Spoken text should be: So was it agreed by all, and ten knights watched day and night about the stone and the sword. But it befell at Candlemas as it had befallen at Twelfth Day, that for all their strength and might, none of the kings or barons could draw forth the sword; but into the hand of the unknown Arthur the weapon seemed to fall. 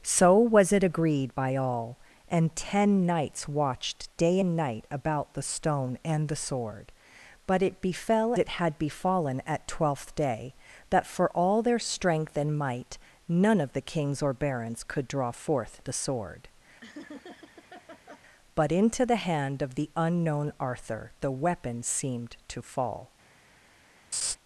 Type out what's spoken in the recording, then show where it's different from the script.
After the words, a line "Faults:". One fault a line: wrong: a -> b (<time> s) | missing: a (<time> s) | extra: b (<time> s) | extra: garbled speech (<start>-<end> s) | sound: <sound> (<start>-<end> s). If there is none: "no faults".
So was it agreed by all, and ten knights watched day and night about the stone and the sword. But it befell it had befallen at Twelfth Day, that for all their strength and might, none of the kings or barons could draw forth the sword; but into the hand of the unknown Arthur the weapon seemed to fall.
Faults:
missing: at Candlemas as (8.3 s)
sound: laugh (16.8-18.2 s)
sound: laugh (24.1-24.4 s)